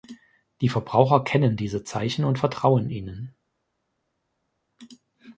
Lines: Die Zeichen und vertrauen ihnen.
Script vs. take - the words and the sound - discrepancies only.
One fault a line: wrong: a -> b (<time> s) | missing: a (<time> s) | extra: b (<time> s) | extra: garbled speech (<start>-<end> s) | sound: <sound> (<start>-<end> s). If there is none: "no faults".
extra: Verbraucher kennen diese (0.7 s)